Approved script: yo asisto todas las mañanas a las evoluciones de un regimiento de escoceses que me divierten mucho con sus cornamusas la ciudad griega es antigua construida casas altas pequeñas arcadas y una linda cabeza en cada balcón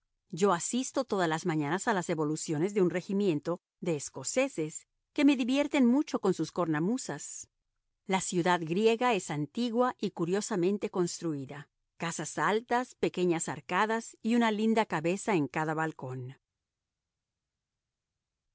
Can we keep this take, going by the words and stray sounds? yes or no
no